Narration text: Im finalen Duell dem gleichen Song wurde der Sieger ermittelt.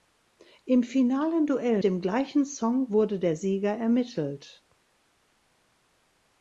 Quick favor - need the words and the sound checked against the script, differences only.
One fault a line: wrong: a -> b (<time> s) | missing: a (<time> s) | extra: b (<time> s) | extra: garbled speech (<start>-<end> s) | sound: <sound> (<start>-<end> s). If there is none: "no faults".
no faults